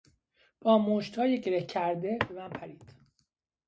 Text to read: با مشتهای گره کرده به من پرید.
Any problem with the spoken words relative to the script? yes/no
no